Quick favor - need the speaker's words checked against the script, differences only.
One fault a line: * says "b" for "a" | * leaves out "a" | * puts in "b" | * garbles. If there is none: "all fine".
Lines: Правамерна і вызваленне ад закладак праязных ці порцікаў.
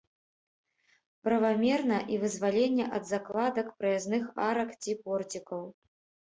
* puts in "арак"